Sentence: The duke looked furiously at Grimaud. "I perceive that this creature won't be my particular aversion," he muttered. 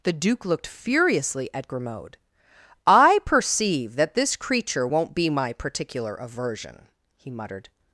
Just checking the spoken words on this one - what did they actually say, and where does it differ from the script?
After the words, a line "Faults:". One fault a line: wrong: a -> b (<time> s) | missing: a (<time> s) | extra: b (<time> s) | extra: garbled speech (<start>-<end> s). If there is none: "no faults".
The duke looked furiously at Grimaud. "I perceive that this creature won't be my particular aversion," he muttered.
Faults:
no faults